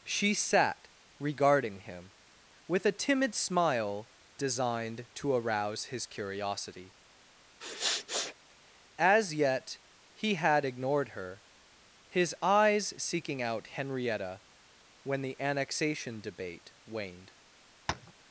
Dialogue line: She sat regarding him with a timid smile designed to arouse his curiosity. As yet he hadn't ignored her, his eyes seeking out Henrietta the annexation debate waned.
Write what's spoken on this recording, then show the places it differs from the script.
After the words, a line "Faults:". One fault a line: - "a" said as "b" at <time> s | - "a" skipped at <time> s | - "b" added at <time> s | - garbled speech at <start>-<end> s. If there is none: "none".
She sat regarding him with a timid smile designed to arouse his curiosity. As yet he had ignored her, his eyes seeking out Henrietta when the annexation debate waned.
Faults:
- "hadn't" said as "had" at 10.3 s
- "when" added at 15.0 s